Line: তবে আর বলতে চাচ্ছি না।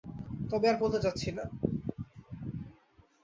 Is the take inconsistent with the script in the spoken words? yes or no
no